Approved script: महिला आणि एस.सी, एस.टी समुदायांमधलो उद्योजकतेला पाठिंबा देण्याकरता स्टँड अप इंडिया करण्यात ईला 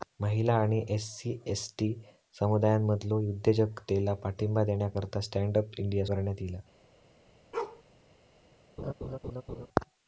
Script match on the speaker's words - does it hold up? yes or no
yes